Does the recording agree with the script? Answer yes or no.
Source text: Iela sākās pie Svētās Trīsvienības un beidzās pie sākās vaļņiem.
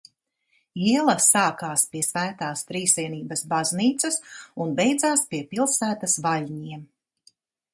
no